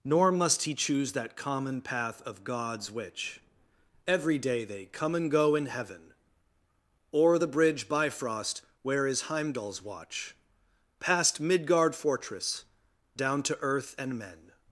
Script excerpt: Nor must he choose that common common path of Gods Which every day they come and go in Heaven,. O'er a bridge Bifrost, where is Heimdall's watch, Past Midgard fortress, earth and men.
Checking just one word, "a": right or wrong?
wrong